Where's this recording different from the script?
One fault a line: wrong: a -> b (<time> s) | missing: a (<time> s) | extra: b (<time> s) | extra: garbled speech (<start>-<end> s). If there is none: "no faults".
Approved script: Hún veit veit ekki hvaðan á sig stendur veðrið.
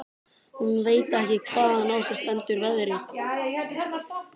missing: veit (1.1 s)